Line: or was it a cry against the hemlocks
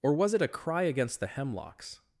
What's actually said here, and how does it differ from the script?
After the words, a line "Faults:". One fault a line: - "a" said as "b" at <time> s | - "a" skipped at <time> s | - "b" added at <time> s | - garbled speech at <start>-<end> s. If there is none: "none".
or was it a cry against the hemlocks
Faults:
none